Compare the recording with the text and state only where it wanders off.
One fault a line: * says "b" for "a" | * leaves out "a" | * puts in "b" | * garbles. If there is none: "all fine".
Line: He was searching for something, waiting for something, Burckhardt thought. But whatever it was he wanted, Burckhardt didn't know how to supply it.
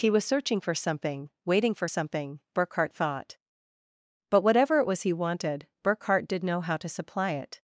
* says "did" for "didn't"